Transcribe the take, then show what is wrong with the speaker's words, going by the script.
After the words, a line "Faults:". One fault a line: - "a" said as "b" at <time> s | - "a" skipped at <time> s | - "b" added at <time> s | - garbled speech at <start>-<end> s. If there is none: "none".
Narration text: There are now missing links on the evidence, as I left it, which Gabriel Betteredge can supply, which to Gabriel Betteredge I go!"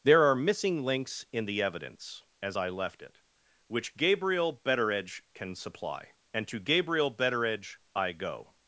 There are missing links in the evidence, as I left it, which Gabriel Betteredge can supply, and to Gabriel Betteredge I go!"
Faults:
- "now" skipped at 0.3 s
- "on" said as "in" at 1.3 s
- "which" said as "and" at 6.3 s